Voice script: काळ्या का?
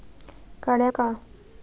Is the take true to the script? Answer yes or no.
yes